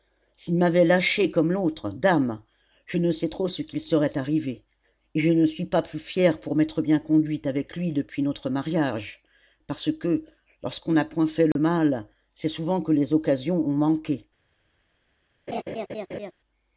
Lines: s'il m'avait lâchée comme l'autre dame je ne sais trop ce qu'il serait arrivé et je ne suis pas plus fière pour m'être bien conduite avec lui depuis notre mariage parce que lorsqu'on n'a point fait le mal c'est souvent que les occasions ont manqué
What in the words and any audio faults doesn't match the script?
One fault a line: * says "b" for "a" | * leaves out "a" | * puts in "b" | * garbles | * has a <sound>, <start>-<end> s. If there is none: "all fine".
* has a dropout, 11.5-11.6 s
* has a laugh, 15.5-16.3 s